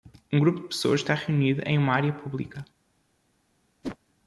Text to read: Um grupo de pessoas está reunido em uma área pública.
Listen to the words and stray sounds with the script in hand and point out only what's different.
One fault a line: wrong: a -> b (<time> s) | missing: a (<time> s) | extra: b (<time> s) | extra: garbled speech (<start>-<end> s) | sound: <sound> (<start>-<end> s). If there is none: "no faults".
sound: whoosh (3.8-4.0 s)